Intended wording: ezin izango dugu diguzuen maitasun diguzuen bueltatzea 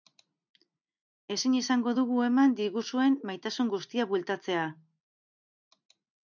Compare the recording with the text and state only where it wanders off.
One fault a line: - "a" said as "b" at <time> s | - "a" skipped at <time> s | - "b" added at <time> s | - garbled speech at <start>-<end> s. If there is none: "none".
- "eman" added at 2.3 s
- "diguzuen" said as "guztia" at 3.7 s